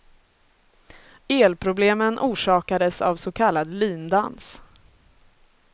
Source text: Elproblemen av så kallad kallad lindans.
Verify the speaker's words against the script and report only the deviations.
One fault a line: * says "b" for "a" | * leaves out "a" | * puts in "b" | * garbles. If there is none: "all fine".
* puts in "orsakades"
* leaves out "kallad"